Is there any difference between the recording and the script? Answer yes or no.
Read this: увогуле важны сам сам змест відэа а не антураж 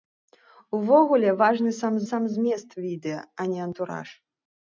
no